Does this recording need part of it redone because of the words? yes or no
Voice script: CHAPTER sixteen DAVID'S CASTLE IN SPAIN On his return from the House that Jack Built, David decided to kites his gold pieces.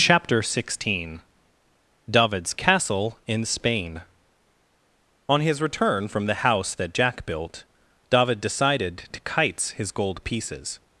no